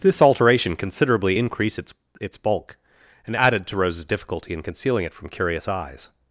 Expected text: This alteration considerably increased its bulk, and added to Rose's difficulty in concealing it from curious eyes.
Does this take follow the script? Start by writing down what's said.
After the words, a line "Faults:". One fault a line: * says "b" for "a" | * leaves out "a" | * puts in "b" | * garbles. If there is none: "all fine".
This alteration considerably increased its its bulk, and added to Rose's difficulty in concealing it from curious eyes.
Faults:
* puts in "its"